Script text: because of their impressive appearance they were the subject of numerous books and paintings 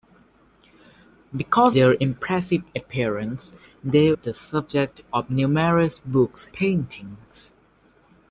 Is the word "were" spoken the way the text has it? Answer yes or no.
no